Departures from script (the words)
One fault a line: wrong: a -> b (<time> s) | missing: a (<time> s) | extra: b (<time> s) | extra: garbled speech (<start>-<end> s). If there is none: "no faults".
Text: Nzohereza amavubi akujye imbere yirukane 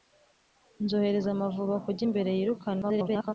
extra: garbled speech (2.8-3.3 s)